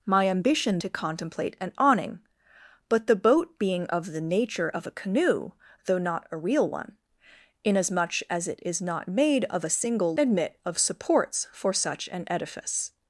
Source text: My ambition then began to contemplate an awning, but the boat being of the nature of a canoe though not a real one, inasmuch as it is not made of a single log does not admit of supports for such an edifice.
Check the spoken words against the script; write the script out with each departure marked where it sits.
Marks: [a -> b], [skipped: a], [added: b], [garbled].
My ambition [skipped: then began] to contemplate an awning, but the boat being of the nature of a canoe though not a real one, inasmuch as it is not made of a single [skipped: log does not] admit of supports for such an edifice.